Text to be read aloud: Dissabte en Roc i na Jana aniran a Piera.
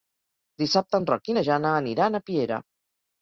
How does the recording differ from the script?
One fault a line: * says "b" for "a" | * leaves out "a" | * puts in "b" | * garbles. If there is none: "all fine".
all fine